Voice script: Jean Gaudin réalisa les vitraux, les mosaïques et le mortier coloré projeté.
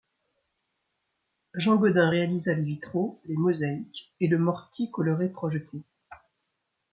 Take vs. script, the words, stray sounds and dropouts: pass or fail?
pass